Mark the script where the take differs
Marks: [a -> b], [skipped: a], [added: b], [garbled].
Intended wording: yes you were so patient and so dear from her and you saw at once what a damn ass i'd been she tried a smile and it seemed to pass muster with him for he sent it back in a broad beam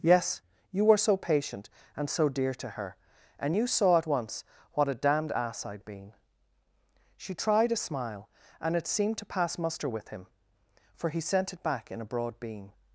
yes you were so patient and so dear [from -> to] her and you saw at once what a [damn -> damned] ass i'd been she tried a smile and it seemed to pass muster with him for he sent it back in a broad beam